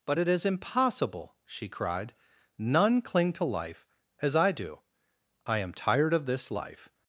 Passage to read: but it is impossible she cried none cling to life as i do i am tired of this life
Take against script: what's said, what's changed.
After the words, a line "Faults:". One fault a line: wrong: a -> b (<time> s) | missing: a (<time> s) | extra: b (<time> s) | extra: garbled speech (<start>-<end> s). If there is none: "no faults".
but it is impossible she cried none cling to life as i do i am tired of this life
Faults:
no faults